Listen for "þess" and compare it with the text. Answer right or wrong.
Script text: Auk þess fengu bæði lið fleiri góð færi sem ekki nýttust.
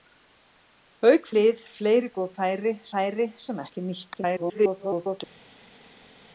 wrong